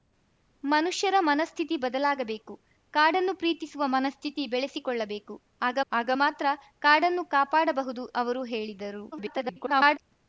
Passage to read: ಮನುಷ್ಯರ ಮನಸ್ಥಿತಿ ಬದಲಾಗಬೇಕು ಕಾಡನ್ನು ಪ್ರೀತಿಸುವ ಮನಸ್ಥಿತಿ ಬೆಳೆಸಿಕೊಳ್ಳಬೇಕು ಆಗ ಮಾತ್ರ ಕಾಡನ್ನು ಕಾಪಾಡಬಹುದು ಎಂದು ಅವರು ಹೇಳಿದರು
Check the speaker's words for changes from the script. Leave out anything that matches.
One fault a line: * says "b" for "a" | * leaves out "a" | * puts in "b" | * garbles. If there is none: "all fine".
* puts in "ಆಗ"
* leaves out "ಎಂದು"
* garbles